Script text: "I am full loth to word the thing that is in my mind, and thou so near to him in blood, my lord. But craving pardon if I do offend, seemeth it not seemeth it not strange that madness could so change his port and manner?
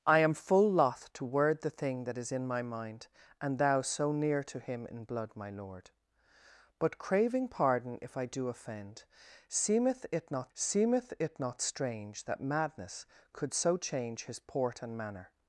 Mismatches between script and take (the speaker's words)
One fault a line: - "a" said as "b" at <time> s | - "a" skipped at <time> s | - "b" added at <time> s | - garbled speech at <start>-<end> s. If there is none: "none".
none